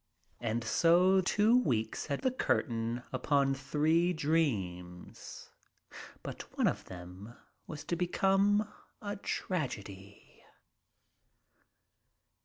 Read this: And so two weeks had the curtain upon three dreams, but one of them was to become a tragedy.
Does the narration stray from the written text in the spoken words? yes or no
no